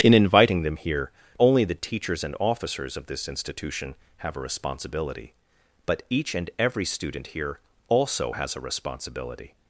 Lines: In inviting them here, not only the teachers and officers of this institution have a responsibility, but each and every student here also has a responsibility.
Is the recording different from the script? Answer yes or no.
yes